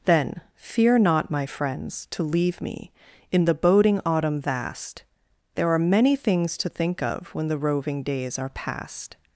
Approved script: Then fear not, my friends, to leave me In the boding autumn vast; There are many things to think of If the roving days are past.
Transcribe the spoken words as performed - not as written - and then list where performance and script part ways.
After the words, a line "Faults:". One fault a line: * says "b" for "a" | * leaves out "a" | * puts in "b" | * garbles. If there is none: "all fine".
Then fear not, my friends, to leave me In the boding autumn vast; There are many things to think of When the roving days are past.
Faults:
* says "When" for "If"